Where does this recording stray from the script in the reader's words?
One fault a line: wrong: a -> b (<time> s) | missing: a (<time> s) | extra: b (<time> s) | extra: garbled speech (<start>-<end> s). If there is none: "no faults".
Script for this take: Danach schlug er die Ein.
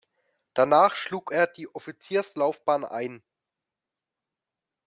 extra: Offizierslaufbahn (1.7 s)